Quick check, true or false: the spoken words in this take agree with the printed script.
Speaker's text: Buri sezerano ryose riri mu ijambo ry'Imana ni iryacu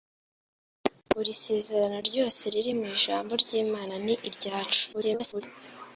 false